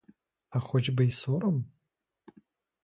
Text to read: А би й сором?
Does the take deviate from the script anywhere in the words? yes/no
yes